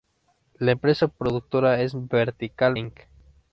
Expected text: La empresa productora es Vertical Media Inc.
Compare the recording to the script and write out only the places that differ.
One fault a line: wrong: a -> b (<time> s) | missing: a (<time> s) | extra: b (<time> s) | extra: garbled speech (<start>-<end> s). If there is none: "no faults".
missing: Media (2.8 s)